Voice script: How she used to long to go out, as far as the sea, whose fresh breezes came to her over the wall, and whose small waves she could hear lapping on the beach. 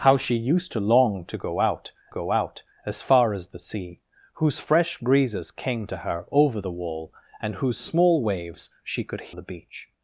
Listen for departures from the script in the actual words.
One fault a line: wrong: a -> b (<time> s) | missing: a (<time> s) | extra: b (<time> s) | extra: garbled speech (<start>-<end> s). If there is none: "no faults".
extra: go out (2.1 s)
missing: hear lapping on (9.3 s)